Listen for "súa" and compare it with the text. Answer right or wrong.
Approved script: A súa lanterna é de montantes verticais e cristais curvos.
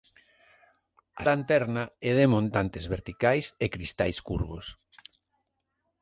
wrong